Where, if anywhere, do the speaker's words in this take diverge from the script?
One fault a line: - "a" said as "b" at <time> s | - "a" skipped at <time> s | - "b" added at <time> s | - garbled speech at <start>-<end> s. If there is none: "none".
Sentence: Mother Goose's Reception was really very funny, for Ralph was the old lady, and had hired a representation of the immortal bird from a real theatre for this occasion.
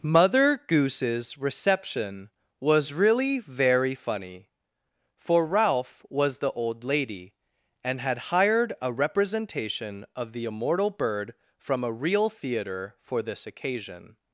none